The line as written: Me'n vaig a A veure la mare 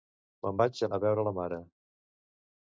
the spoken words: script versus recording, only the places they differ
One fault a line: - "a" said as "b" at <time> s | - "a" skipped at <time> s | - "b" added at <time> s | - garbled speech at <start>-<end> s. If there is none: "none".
none